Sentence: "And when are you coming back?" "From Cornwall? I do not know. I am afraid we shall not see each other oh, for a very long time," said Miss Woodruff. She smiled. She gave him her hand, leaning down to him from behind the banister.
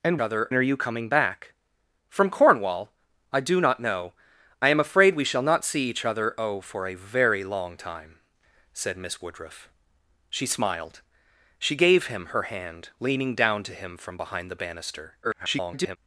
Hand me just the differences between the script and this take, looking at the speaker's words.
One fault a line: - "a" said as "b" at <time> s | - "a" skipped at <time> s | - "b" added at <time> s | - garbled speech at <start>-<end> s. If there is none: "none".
- "when" said as "other" at 0.2 s
- garbled speech at 15.2-16.0 s